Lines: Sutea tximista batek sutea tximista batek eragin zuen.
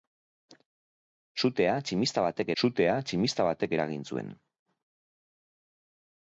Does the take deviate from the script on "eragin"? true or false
false